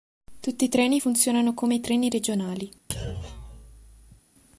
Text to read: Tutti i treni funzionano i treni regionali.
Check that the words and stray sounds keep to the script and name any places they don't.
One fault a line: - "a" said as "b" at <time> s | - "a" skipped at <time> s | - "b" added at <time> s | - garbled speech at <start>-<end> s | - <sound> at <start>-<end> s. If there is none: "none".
- "come" added at 1.5 s
- thud at 2.9-4.2 s